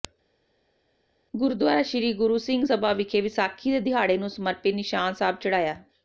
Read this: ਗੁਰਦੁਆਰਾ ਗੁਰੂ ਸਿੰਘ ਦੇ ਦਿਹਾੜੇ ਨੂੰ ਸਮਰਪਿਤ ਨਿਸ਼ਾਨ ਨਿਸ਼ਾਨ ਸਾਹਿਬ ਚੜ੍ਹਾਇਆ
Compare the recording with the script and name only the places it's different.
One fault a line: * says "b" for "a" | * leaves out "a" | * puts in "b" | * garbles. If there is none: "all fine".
* puts in "ਸ੍ਰੀ"
* puts in "ਸਭਾ ਵਿਖੇ ਵਿਸਾਖੀ"
* leaves out "ਨਿਸ਼ਾਨ"